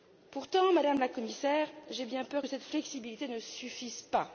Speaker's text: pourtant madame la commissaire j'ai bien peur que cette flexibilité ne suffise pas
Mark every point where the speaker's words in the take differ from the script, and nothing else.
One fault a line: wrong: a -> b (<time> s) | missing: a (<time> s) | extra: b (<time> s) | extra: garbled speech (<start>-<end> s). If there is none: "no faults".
no faults